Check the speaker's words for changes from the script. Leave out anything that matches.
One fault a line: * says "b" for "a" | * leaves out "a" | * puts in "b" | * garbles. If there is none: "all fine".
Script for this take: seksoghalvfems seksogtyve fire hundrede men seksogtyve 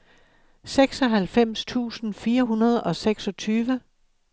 * says "tusind" for "seksogtyve"
* says "og" for "men"